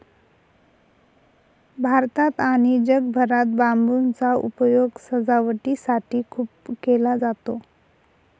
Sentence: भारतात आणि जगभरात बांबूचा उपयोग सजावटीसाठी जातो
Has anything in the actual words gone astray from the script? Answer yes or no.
yes